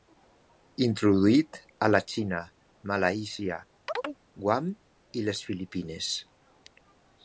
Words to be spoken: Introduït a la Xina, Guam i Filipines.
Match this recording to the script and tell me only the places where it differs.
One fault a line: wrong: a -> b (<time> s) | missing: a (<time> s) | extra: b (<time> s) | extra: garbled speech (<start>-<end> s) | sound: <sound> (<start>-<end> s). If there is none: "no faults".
extra: Malàisia (2.9 s)
sound: chirp (3.9-4.2 s)
extra: les (5.3 s)